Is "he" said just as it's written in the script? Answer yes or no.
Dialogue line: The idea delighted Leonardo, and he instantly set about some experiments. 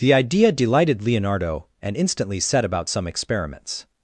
no